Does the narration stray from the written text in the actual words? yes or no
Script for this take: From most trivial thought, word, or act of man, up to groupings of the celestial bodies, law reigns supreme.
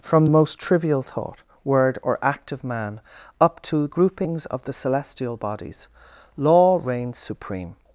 no